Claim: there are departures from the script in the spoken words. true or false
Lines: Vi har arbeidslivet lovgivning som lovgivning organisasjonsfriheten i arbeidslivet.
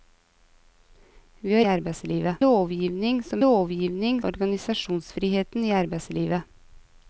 false